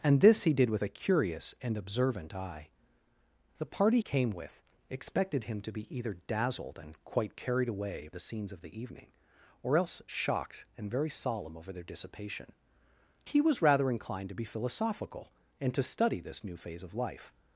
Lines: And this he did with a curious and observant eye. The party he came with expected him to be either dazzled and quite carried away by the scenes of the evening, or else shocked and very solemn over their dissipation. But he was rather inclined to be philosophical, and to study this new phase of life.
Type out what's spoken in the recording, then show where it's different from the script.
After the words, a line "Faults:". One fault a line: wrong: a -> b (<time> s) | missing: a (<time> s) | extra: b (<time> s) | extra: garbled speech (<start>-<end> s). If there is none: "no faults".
And this he did with a curious and observant eye. The party came with expected him to be either dazzled and quite carried away the scenes of the evening, or else shocked and very solemn over their dissipation. He was rather inclined to be philosophical, and to study this new phase of life.
Faults:
missing: he (4.0 s)
missing: by (8.1 s)
missing: But (12.5 s)